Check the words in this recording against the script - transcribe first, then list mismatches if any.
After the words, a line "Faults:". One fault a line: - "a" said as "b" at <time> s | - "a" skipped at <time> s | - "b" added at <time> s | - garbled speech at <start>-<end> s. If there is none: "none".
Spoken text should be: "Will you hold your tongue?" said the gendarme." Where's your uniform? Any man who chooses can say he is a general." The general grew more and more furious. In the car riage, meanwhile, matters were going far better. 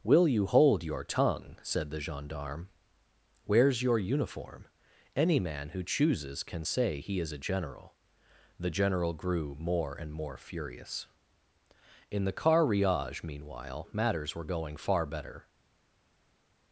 "Will you hold your tongue?" said the gendarme." Where's your uniform? Any man who chooses can say he is a general." The general grew more and more furious. In the car riage, meanwhile, matters were going far better.
Faults:
none